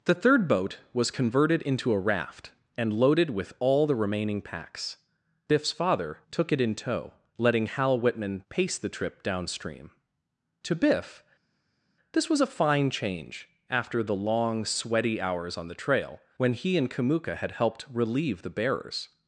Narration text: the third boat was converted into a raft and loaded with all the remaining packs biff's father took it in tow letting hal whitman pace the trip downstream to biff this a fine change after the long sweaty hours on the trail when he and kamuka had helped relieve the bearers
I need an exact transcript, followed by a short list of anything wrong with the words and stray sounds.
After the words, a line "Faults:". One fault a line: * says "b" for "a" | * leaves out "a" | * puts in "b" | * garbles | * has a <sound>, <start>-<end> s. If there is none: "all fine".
the third boat was converted into a raft and loaded with all the remaining packs biff's father took it in tow letting hal whitman pace the trip downstream to biff this was a fine change after the long sweaty hours on the trail when he and kamuka had helped relieve the bearers
Faults:
* puts in "was"